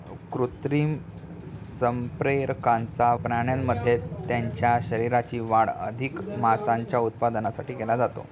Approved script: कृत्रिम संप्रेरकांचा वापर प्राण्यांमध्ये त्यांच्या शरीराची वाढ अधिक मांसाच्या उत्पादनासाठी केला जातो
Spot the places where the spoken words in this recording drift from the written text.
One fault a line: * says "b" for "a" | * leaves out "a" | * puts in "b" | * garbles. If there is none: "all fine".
* leaves out "वापर"